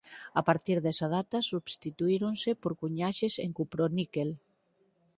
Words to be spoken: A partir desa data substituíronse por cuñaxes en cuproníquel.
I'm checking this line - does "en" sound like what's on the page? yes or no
yes